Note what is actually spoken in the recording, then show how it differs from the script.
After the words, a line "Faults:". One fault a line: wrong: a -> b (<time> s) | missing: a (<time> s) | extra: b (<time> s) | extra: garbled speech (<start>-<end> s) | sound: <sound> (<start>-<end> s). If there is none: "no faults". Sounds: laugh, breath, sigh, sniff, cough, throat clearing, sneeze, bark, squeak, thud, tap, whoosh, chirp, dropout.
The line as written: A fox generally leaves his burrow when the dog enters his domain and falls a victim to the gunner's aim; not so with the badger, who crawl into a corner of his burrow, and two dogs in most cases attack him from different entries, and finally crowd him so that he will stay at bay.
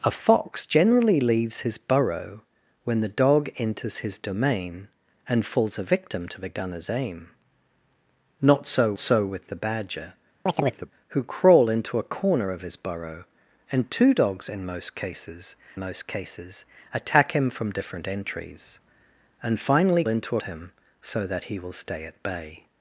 A fox generally leaves his burrow when the dog enters his domain and falls a victim to the gunner's aim; not so so with the badger, who crawl into a corner of his burrow, and two dogs in most cases most cases attack him from different entries, and finally into him so that he will stay at bay.
Faults:
extra: so (9.0 s)
sound: chirp (10.5-10.9 s)
extra: most cases (15.8 s)
wrong: crowd -> into (20.1 s)